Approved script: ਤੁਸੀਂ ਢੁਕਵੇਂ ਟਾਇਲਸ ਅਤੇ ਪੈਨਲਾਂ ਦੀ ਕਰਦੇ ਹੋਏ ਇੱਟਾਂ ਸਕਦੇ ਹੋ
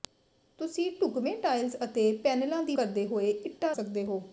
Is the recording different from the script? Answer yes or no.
no